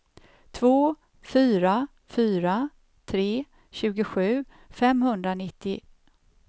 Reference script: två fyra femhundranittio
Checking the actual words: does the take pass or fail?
fail